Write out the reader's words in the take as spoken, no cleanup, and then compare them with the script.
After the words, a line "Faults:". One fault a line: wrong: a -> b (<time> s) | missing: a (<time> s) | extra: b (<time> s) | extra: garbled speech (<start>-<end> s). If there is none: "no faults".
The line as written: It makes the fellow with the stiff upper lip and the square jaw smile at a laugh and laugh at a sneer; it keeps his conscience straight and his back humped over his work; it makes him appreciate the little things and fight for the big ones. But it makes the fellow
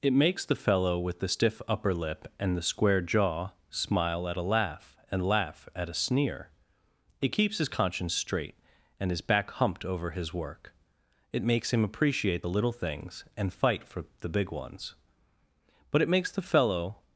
It makes the fellow with the stiff upper lip and the square jaw smile at a laugh and laugh at a sneer; it keeps his conscience straight and his back humped over his work; it makes him appreciate the little things and fight for the big ones. But it makes the fellow
Faults:
no faults